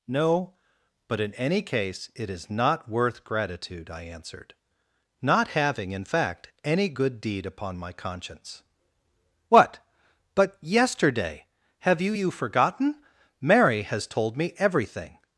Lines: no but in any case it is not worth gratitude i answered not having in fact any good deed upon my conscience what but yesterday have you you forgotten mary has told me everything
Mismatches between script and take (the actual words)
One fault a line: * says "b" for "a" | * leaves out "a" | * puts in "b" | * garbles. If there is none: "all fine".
all fine